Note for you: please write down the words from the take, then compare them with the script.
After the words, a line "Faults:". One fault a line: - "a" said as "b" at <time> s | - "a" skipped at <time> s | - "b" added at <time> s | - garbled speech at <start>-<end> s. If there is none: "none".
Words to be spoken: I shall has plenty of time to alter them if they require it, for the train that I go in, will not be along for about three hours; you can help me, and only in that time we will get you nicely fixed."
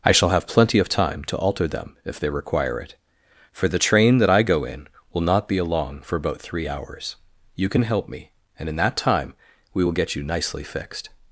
I shall have plenty of time to alter them if they require it, for the train that I go in, will not be along for about three hours; you can help me, and in that time we will get you nicely fixed."
Faults:
- "has" said as "have" at 0.3 s
- "only" skipped at 8.7 s